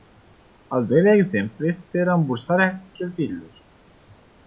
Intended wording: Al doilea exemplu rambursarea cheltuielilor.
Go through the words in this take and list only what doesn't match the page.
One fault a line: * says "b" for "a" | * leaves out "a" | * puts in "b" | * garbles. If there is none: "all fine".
* puts in "este"